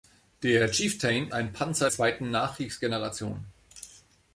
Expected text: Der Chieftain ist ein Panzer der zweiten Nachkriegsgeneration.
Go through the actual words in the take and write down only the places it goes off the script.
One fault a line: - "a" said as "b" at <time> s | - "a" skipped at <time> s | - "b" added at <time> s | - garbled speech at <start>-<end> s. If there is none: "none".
- "ist" skipped at 1.3 s
- "der" skipped at 1.9 s